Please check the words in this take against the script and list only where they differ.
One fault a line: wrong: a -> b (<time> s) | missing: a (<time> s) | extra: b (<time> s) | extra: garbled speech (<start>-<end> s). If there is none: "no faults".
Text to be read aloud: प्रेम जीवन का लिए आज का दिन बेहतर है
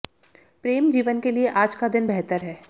wrong: का -> के (1.2 s)